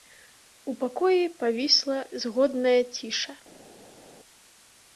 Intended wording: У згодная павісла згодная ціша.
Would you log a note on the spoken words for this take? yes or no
yes